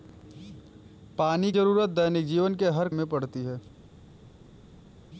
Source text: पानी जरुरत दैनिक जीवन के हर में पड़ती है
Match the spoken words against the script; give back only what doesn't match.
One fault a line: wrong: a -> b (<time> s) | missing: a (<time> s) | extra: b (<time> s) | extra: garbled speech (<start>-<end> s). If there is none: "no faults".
no faults